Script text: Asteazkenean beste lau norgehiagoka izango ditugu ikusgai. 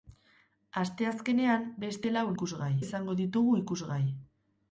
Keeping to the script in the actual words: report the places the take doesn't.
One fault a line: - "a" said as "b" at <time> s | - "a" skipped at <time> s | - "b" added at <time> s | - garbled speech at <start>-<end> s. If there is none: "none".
- "norgehiagoka" said as "ikusgai" at 2.4 s